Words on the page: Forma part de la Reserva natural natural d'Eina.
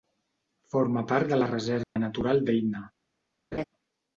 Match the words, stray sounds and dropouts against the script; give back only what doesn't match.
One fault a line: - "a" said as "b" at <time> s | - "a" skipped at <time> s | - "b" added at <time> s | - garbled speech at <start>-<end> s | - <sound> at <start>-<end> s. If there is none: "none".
- dropout at 1.8-2.0 s
- "natural" skipped at 2.4 s
- laugh at 3.5-3.6 s